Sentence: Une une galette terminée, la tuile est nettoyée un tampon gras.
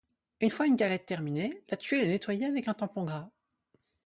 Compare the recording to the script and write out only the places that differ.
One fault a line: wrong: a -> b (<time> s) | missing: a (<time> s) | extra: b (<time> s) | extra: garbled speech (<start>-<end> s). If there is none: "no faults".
extra: fois (0.5 s)
extra: avec (2.5 s)